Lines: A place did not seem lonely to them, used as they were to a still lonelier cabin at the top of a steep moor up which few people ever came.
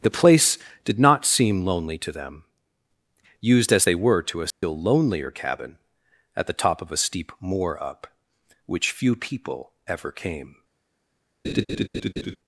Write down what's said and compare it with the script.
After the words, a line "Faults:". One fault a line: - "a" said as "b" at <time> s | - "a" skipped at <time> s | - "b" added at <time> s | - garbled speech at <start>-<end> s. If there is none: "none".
The place did not seem lonely to them, used as they were to a still lonelier cabin at the top of a steep moor up which few people ever came.
Faults:
- "A" said as "The" at 0.0 s